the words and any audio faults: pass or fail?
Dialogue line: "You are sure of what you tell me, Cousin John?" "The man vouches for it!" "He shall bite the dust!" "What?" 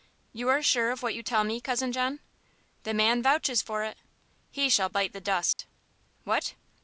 fail